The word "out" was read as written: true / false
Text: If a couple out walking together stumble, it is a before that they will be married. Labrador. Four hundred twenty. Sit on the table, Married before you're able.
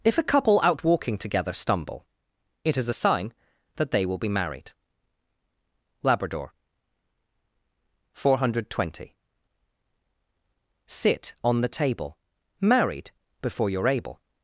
true